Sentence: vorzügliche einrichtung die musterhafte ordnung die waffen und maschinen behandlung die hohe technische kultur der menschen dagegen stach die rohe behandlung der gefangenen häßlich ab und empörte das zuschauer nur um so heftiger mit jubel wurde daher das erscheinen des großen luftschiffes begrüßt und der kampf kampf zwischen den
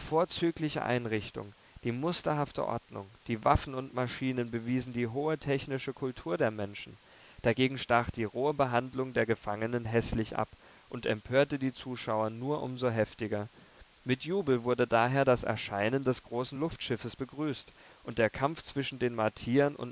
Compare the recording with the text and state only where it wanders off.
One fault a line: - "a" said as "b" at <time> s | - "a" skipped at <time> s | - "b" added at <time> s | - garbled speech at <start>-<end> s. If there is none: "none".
- "behandlung" said as "bewiesen" at 4.5 s
- "das" said as "die" at 11.6 s
- "kampf" skipped at 18.6 s